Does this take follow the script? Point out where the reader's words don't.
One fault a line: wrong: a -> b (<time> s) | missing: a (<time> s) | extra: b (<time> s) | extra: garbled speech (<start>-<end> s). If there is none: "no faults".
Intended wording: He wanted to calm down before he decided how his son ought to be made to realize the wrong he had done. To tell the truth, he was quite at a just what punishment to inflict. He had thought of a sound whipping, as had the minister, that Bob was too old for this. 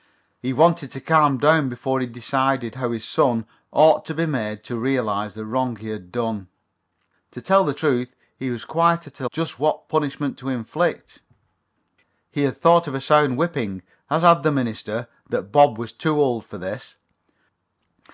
no faults